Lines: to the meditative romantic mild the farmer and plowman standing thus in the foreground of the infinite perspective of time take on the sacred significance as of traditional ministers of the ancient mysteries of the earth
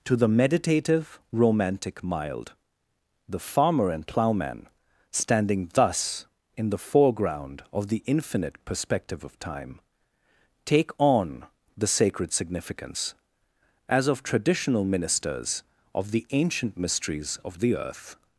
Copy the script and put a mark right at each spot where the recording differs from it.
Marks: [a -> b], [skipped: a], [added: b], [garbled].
to the meditative romantic mild the farmer and plowman standing thus in the foreground of the infinite perspective of time take on the sacred significance as of traditional ministers of the ancient mysteries of the earth